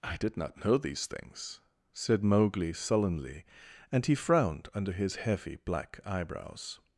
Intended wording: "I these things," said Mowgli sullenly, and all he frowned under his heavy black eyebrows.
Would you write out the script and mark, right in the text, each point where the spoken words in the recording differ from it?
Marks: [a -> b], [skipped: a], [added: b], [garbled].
"I [added: did not know] these things," said Mowgli sullenly, and [skipped: all] he frowned under his heavy black eyebrows.